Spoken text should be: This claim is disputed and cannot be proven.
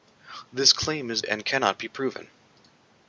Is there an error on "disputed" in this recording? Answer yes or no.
yes